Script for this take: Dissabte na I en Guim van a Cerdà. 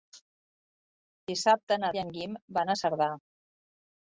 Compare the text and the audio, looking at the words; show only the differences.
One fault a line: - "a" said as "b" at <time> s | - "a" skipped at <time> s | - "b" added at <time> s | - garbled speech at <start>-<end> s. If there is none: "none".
none